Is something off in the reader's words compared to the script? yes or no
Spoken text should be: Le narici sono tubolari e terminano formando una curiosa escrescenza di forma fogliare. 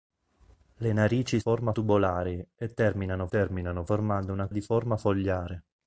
yes